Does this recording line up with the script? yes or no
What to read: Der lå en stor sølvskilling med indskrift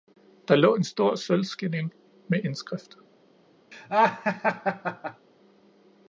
yes